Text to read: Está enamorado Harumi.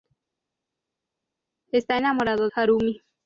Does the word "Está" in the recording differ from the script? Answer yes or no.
no